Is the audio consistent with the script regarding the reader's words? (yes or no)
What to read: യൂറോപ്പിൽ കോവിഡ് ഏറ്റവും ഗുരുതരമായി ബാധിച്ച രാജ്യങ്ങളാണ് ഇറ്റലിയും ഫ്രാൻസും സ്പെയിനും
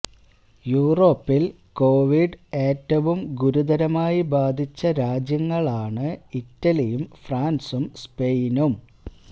yes